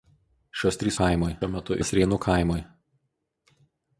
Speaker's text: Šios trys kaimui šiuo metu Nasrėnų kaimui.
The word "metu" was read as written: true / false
true